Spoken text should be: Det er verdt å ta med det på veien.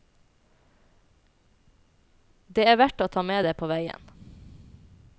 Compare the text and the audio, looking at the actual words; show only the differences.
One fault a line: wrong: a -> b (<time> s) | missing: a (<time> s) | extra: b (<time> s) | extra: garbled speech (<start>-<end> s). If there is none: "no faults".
no faults